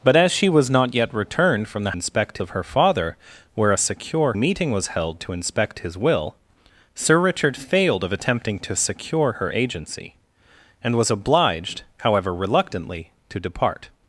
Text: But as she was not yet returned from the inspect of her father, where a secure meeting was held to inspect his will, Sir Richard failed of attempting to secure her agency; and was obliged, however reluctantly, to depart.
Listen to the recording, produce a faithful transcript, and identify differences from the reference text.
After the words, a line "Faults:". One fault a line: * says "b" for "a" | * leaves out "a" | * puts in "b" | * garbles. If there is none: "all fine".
But as she was not yet returned from the inspect of her father, where a secure meeting was held to inspect his will, Sir Richard failed of attempting to secure her agency; and was obliged, however reluctantly, to depart.
Faults:
all fine